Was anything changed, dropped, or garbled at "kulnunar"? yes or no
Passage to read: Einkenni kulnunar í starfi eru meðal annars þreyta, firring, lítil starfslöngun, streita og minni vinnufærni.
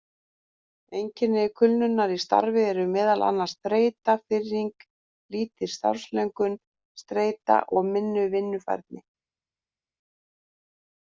no